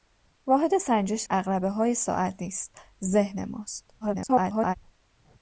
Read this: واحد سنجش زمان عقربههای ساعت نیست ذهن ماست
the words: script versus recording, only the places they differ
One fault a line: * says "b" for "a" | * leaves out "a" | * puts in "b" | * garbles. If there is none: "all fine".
* leaves out "زمان"
* garbles